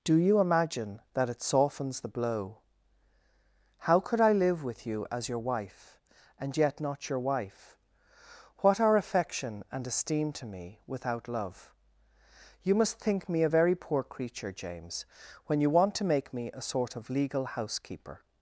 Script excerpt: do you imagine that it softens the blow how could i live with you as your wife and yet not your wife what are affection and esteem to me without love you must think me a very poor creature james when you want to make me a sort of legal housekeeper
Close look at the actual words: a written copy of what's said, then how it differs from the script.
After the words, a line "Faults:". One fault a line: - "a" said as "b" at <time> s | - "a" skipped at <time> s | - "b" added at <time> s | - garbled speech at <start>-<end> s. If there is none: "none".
do you imagine that it softens the blow how could i live with you as your wife and yet not your wife what are affection and esteem to me without love you must think me a very poor creature james when you want to make me a sort of legal housekeeper
Faults:
none